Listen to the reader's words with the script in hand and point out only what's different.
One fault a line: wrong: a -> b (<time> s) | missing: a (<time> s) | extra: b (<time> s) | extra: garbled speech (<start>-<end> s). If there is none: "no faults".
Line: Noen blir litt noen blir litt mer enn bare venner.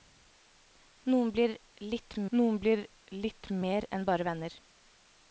no faults